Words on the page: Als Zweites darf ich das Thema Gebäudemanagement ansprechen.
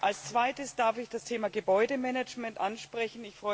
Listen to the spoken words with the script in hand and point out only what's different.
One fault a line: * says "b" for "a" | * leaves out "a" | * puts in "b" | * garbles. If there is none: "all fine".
all fine